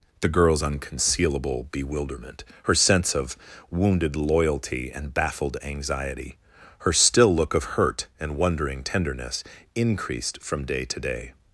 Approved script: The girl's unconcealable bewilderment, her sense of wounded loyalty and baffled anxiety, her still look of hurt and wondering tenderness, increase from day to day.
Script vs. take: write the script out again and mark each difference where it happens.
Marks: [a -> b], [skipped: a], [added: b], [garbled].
The girl's unconcealable bewilderment, her sense of wounded loyalty and baffled anxiety, her still look of hurt and wondering tenderness, [increase -> increased] from day to day.